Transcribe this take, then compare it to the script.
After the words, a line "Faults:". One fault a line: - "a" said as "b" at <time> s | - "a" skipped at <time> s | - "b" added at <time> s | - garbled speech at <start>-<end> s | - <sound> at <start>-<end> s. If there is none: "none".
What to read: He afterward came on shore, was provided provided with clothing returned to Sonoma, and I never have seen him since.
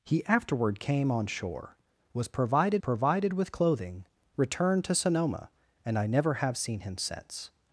He afterward came on shore, was provided provided with clothing returned to Sonoma, and I never have seen him since.
Faults:
none